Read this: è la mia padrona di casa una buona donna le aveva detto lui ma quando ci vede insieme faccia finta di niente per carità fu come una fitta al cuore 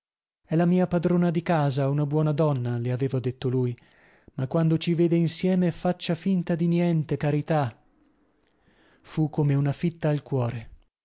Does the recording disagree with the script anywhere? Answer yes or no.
yes